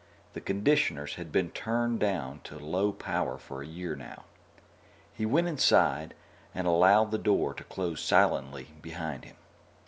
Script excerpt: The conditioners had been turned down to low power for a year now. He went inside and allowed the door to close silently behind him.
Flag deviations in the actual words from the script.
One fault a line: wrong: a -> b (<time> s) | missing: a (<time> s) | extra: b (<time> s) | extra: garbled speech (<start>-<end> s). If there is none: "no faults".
no faults